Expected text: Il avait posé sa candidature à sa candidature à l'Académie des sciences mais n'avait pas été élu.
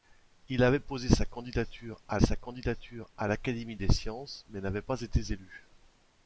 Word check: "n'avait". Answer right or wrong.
right